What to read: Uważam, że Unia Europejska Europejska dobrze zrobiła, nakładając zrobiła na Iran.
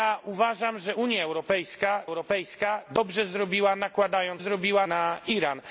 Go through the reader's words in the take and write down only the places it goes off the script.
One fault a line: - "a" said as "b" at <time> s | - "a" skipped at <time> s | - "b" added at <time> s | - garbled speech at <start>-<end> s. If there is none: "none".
none